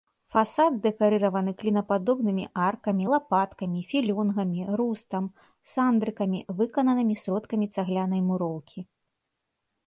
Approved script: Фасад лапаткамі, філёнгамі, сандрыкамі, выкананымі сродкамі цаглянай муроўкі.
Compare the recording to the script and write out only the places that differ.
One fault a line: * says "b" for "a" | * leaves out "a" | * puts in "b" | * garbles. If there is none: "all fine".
* puts in "дэкарыраваны клінападобнымі аркамі"
* puts in "рустам"